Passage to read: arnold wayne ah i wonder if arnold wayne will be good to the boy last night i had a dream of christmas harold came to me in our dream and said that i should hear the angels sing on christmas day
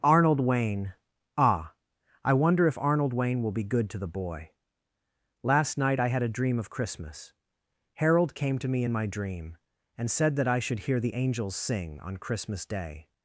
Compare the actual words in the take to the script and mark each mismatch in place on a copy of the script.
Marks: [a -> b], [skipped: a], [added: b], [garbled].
arnold wayne ah i wonder if arnold wayne will be good to the boy last night i had a dream of christmas harold came to me in [our -> my] dream and said that i should hear the angels sing on christmas day